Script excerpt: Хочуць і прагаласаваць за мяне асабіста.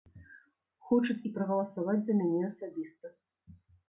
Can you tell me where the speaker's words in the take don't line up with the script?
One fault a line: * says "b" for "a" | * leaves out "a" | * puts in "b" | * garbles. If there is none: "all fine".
all fine